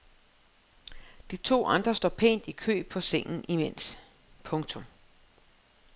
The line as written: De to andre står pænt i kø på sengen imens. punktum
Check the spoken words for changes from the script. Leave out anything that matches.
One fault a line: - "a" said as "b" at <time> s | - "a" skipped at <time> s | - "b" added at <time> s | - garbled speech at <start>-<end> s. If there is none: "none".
none